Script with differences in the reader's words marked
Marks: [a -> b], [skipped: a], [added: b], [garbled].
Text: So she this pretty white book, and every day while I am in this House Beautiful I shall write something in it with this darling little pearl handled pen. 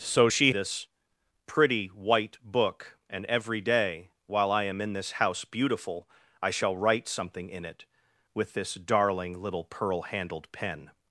So she this pretty white book, and every day while I am in this House Beautiful I shall write something in it with this darling little pearl handled pen.